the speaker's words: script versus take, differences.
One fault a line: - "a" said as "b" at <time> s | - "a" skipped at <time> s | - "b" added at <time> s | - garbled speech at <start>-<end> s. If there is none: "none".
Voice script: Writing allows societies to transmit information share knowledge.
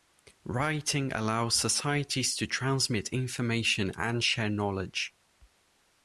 - "and" added at 4.0 s